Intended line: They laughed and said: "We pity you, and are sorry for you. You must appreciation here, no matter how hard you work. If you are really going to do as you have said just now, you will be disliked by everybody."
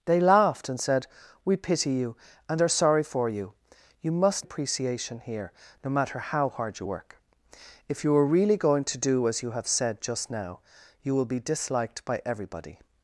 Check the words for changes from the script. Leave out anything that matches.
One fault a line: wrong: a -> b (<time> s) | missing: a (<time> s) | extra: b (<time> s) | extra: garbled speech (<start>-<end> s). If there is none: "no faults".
no faults